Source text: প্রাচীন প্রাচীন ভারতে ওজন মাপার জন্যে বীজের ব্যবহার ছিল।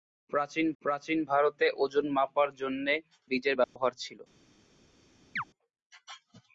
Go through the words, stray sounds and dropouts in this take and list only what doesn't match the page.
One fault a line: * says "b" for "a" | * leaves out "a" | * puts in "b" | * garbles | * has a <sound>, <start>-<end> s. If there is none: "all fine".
* has a dropout, 3.6-3.8 s
* has a chirp, 5.4-5.4 s